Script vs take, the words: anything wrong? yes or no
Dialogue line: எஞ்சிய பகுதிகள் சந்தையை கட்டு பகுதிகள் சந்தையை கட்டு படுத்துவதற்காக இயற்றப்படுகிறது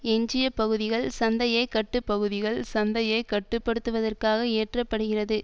no